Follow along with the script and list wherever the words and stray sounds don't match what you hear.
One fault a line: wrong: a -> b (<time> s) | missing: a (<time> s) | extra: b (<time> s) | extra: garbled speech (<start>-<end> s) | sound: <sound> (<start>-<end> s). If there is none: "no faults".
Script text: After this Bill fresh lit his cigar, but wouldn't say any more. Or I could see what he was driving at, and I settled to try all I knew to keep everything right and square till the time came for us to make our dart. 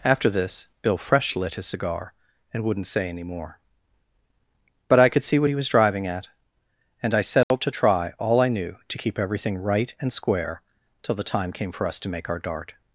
wrong: but -> and (2.5 s)
wrong: Or -> But (4.9 s)
sound: dropout (7.4-7.5 s)